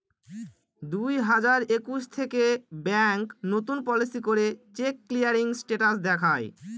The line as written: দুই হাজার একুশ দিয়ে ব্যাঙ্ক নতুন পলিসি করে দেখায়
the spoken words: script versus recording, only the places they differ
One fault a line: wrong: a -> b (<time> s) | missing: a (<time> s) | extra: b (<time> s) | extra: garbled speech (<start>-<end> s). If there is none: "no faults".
wrong: দিয়ে -> থেকে (2.2 s)
extra: চেক ক্লিয়ারিং স্টেটাস (4.8 s)